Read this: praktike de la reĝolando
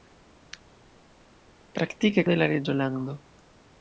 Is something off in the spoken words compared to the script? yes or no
no